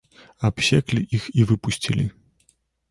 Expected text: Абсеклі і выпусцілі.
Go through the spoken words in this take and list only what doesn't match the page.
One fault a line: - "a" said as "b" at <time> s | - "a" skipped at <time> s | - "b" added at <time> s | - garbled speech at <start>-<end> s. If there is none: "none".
- "іх" added at 1.2 s